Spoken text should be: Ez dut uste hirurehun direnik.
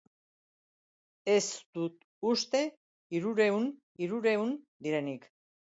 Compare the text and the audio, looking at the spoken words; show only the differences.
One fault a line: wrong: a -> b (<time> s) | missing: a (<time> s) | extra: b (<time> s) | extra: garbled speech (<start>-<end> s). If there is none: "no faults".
extra: hirurehun (4.0 s)